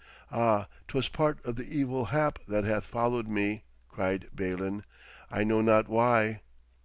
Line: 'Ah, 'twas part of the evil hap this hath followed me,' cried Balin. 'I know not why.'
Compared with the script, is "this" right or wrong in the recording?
wrong